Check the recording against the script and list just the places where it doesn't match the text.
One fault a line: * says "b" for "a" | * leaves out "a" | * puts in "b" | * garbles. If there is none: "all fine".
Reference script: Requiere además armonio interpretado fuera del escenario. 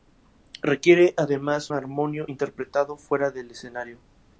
all fine